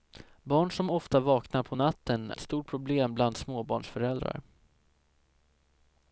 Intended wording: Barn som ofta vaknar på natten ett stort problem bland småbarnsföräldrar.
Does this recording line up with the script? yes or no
yes